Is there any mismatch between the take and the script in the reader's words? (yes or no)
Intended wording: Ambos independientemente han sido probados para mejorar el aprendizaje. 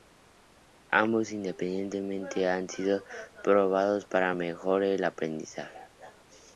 no